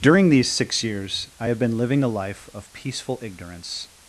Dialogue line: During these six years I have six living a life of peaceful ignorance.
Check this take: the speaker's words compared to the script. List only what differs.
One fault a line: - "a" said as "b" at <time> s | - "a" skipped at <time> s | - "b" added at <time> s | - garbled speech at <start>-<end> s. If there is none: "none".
- "six" said as "been" at 1.6 s